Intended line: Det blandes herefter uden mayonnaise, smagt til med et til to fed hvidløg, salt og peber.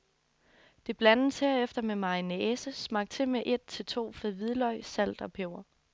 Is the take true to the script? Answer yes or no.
no